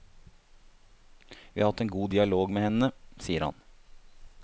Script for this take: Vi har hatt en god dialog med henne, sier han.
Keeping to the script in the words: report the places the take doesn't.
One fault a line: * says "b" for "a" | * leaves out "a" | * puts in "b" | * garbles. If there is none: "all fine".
all fine